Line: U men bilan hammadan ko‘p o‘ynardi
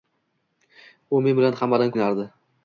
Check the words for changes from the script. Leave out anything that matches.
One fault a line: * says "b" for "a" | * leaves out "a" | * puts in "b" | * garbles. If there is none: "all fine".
* leaves out "ko‘p"